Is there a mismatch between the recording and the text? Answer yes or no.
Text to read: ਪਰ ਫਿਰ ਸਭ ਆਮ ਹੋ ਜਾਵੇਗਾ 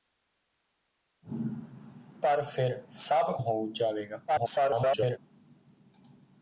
yes